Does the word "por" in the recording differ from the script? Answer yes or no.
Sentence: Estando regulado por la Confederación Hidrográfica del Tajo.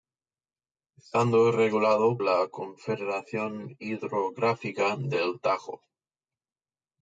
yes